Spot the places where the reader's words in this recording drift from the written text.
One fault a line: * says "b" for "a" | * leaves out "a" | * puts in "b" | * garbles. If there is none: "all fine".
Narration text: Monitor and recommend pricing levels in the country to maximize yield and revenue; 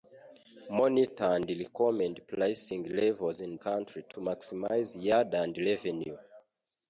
* leaves out "the"